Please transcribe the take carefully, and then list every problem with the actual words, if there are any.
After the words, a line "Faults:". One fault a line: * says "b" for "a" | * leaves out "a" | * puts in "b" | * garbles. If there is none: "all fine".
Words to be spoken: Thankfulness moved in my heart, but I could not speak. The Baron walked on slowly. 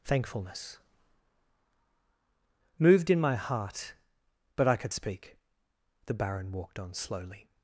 Thankfulness moved in my heart, but I could speak. The Baron walked on slowly.
Faults:
* leaves out "not"